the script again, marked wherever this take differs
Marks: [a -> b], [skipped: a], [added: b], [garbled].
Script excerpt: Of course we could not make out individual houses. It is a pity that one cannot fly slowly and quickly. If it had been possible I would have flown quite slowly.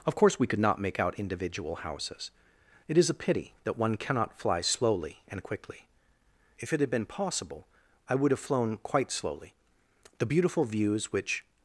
Of course we could not make out individual houses. It is a pity that one cannot fly slowly and quickly. If it had been possible I would have flown quite slowly. [added: The beautiful views which]